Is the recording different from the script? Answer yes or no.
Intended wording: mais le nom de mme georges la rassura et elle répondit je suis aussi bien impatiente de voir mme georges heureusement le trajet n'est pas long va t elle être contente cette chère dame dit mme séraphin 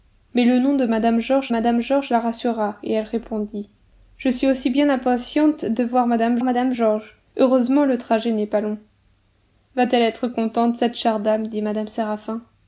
yes